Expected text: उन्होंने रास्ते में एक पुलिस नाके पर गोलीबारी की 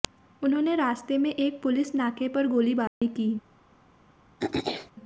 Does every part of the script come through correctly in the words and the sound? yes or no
no